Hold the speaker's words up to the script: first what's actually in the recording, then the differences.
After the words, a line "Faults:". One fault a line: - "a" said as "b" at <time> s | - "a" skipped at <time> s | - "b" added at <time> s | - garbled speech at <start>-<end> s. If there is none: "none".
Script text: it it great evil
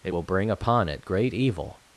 it will bring upon it great evil
Faults:
- "will bring upon" added at 0.1 s